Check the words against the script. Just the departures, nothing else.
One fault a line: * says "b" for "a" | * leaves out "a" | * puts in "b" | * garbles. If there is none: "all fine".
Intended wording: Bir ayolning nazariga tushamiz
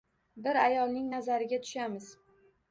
all fine